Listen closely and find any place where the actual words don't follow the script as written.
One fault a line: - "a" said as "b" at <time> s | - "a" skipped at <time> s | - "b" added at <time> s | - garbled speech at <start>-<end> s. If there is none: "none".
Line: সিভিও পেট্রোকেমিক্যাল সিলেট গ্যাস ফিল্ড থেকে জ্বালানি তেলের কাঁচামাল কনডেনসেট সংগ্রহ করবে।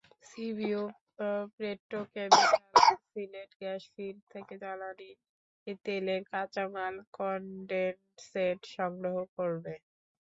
none